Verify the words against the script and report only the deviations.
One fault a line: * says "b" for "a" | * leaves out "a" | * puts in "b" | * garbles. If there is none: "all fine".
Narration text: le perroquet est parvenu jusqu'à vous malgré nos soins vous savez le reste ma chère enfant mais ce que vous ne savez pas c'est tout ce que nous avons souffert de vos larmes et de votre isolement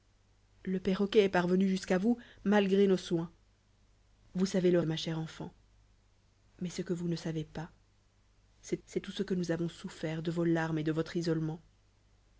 * leaves out "reste"
* puts in "c'est"